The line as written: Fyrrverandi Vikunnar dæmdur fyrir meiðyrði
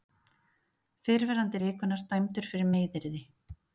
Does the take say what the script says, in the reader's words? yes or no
yes